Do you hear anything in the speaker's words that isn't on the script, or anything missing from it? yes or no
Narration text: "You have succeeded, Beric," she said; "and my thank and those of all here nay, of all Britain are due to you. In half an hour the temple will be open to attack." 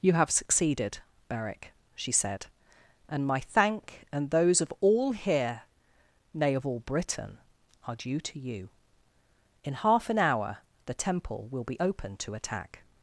no